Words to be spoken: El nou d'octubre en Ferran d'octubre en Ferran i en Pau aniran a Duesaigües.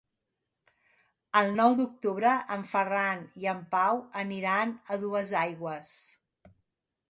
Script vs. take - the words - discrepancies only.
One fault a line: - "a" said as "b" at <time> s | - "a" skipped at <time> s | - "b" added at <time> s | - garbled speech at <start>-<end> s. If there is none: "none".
- "d'octubre en Ferran" skipped at 3.3 s